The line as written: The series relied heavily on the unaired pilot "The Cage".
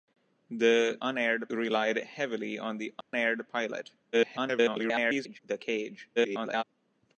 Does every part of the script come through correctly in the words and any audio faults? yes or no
no